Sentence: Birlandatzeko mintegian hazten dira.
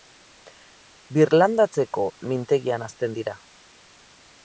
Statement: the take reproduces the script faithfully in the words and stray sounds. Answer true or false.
true